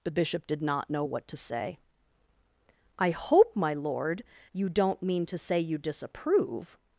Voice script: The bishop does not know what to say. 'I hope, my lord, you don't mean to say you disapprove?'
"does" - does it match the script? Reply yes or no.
no